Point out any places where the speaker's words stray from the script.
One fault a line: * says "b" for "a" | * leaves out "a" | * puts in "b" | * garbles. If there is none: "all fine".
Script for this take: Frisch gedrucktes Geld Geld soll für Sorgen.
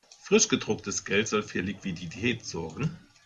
* leaves out "Geld"
* puts in "Liquidität"